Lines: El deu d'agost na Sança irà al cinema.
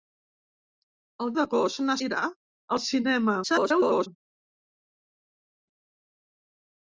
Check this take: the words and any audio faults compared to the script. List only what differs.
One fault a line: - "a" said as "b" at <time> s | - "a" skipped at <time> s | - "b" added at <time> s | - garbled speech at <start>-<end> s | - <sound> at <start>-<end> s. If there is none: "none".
- "deu" skipped at 1.3 s
- "Sança" skipped at 2.0 s
- garbled speech at 3.4-4.1 s